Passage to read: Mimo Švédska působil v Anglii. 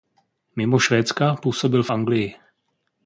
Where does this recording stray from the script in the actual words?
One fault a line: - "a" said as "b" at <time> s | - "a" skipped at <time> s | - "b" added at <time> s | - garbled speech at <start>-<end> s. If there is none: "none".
none